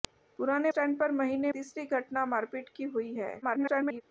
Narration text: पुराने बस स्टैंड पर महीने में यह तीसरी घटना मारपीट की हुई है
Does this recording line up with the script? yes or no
no